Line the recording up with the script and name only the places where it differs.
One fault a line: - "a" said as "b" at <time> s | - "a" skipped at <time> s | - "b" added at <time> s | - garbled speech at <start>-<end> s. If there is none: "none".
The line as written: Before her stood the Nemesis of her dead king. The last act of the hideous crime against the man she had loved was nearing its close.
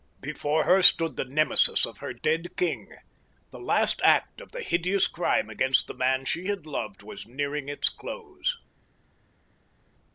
none